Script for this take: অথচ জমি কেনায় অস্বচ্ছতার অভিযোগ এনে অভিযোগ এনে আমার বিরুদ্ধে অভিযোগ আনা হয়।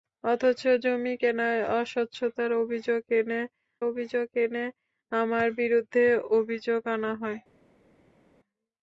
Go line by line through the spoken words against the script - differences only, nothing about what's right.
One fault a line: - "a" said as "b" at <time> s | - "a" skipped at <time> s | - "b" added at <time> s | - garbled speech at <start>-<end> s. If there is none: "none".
none